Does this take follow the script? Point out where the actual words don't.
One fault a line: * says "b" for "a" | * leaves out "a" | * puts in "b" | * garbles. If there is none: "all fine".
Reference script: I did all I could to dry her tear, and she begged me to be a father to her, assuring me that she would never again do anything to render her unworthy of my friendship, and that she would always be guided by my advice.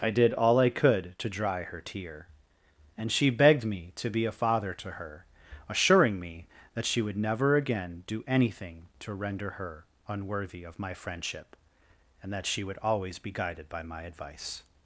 all fine